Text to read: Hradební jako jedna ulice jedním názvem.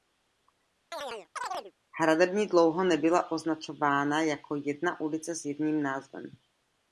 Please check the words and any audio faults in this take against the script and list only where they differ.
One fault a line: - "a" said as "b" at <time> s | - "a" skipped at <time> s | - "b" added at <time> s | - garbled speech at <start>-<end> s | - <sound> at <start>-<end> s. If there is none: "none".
- chirp at 0.9-1.7 s
- "dlouho nebyla označována" added at 2.5 s
- "s" added at 5.3 s